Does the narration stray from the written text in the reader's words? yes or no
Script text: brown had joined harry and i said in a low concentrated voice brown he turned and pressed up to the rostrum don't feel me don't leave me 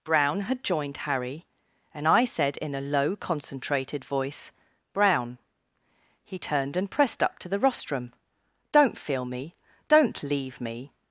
no